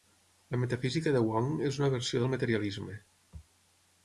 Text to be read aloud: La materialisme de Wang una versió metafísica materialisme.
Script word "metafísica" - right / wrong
wrong